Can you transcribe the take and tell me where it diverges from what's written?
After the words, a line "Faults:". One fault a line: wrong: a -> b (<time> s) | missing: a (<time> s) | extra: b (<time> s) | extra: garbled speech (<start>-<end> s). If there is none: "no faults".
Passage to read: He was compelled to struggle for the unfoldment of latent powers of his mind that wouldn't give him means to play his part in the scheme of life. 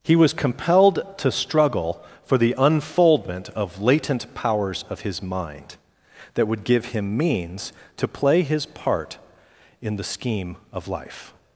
He was compelled to struggle for the unfoldment of latent powers of his mind that would give him means to play his part in the scheme of life.
Faults:
wrong: wouldn't -> would (6.5 s)